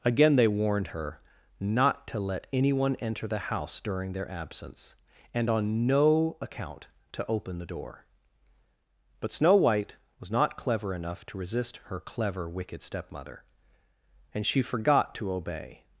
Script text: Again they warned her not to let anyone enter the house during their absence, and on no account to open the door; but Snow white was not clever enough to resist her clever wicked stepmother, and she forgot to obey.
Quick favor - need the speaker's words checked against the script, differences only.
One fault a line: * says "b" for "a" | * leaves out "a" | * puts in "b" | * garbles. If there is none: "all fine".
all fine